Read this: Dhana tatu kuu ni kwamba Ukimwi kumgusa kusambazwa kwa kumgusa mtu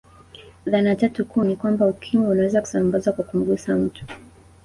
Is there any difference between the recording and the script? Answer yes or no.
yes